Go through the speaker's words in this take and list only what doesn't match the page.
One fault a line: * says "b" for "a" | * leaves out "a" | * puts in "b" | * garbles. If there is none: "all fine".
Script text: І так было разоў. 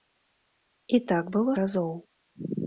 all fine